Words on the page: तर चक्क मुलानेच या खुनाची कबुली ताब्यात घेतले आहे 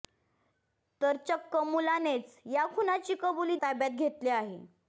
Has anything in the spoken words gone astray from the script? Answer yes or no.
no